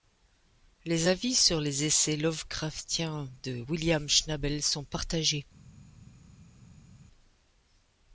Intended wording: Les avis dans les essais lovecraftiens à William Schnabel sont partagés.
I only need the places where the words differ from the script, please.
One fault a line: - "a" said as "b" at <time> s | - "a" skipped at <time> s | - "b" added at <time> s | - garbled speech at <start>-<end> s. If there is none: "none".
- "dans" said as "sur" at 1.3 s
- "à" said as "de" at 3.4 s